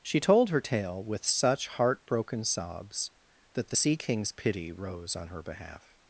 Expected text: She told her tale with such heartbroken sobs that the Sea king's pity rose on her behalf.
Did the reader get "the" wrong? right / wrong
right